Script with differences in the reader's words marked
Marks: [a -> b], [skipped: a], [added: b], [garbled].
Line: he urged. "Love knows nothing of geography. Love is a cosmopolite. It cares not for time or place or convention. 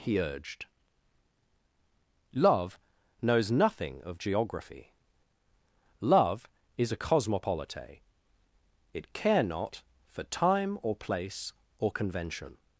he urged. "Love knows nothing of geography. Love is a cosmopolite. It [cares -> care] not for time or place or convention.